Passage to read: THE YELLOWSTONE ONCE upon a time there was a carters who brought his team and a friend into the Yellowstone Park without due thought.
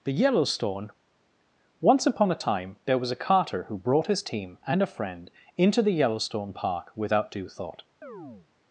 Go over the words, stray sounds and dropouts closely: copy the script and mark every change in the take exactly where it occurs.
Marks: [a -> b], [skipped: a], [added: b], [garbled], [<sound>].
THE YELLOWSTONE ONCE upon a time there was a [carters -> carter] who brought his team and a friend into the Yellowstone Park without due thought. [chirp]